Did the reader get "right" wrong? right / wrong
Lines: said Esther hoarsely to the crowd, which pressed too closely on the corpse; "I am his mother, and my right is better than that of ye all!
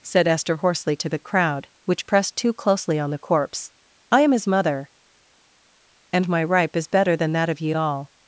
wrong